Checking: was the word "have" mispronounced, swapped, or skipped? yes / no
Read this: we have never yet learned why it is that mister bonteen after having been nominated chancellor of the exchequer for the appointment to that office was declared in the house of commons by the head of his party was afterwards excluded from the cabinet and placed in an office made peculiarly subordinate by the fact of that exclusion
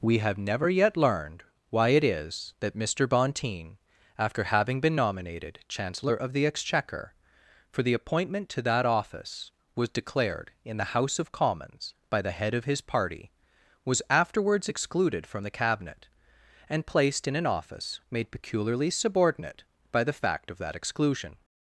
no